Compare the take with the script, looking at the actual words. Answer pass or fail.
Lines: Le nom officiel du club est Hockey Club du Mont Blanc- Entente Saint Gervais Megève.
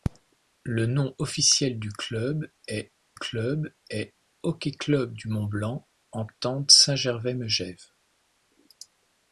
fail